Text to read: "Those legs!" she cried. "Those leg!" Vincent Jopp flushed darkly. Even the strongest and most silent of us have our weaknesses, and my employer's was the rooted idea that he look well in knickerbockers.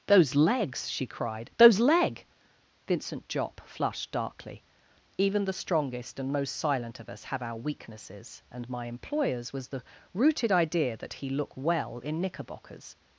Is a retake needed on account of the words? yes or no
no